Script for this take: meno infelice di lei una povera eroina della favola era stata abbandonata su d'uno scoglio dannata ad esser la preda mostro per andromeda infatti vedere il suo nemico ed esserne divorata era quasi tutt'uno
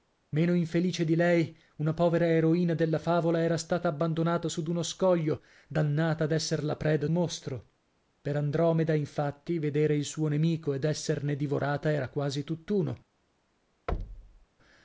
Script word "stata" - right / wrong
right